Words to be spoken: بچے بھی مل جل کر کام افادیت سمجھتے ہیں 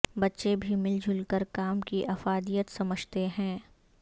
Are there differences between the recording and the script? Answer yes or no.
yes